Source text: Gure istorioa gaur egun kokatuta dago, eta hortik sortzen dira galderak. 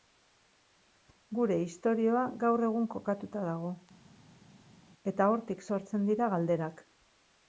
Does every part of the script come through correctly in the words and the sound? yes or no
yes